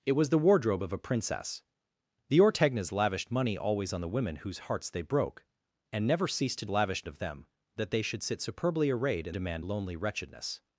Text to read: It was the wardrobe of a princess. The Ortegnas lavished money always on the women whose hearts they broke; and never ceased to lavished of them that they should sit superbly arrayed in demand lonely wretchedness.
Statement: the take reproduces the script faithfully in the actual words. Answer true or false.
true